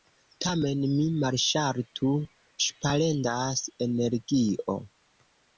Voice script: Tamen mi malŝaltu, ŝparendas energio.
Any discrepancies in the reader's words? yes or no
no